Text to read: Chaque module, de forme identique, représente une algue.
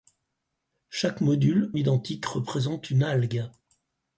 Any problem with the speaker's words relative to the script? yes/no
yes